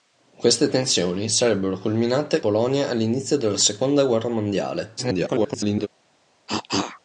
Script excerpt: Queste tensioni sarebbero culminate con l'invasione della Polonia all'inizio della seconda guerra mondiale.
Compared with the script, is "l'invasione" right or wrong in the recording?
wrong